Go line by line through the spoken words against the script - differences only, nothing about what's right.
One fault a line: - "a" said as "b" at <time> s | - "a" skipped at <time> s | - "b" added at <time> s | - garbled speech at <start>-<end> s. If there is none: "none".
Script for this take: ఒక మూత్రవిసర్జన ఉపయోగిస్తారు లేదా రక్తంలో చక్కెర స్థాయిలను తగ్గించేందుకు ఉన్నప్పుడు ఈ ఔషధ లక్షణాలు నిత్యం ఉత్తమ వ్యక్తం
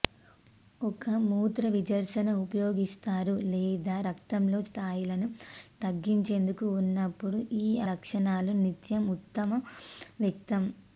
- "చక్కెర" skipped at 4.6 s
- "ఔషధ" skipped at 7.7 s